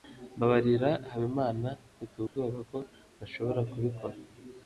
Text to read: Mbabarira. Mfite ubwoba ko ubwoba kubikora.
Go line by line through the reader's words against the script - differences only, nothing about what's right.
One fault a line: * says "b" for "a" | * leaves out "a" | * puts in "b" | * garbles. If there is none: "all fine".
* puts in "Habimana"
* says "ntashobora" for "ubwoba"